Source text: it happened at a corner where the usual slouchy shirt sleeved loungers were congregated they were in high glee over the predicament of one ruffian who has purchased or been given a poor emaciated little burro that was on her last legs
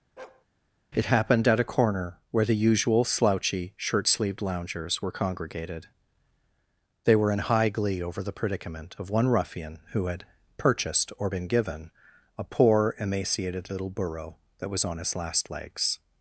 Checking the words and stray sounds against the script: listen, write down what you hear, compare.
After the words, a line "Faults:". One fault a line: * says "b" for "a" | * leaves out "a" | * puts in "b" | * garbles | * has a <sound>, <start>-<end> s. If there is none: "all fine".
it happened at a corner where the usual slouchy shirt sleeved loungers were congregated they were in high glee over the predicament of one ruffian who had purchased or been given a poor emaciated little burro that was on his last legs
Faults:
* has a bark, 0.2-0.5 s
* says "had" for "has"
* says "his" for "her"